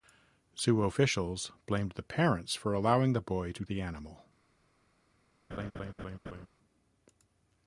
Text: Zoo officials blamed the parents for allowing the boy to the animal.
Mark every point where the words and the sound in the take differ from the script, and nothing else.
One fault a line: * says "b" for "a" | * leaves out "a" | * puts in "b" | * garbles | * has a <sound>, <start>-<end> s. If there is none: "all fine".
* has a laugh, 5.5-6.5 s